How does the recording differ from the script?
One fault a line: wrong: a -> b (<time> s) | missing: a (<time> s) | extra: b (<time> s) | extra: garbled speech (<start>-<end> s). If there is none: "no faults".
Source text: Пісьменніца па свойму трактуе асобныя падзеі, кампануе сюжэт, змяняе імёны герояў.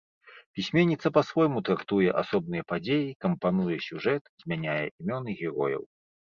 no faults